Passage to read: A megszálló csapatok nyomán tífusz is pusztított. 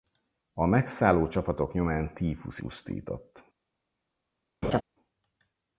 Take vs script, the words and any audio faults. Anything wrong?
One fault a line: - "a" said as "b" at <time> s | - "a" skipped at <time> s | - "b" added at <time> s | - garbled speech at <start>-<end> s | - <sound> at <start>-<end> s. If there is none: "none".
- "is" skipped at 2.6 s
- laugh at 4.6-4.8 s